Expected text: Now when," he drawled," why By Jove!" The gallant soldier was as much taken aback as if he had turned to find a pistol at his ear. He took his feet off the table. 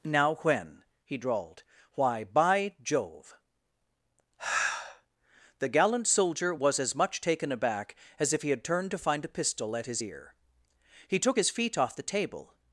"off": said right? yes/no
yes